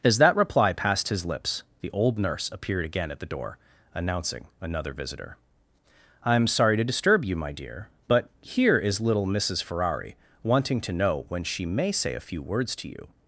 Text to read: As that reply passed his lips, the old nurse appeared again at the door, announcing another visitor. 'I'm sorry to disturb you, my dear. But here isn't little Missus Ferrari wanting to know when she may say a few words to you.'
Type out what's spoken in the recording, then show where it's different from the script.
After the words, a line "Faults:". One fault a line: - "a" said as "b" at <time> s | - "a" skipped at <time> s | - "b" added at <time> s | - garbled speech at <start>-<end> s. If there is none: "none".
As that reply passed his lips, the old nurse appeared again at the door, announcing another visitor. 'I'm sorry to disturb you, my dear. But here is little Missus Ferrari wanting to know when she may say a few words to you.'
Faults:
- "isn't" said as "is" at 8.8 s